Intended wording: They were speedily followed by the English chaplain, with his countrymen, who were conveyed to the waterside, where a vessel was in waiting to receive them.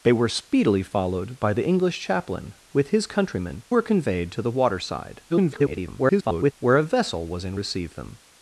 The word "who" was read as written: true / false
false